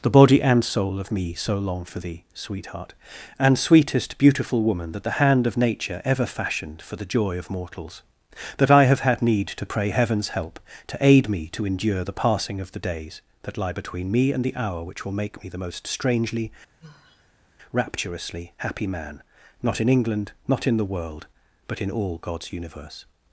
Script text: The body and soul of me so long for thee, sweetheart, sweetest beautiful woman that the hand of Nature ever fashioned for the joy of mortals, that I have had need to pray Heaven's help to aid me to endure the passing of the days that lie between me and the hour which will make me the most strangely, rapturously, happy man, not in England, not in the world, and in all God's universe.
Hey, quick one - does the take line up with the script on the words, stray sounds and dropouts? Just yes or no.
no